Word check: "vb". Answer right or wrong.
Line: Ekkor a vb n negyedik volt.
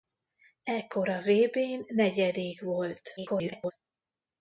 right